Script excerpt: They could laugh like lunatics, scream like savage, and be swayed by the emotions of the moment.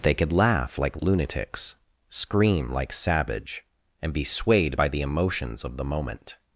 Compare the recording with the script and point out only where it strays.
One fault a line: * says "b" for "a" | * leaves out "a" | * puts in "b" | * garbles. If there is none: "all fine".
all fine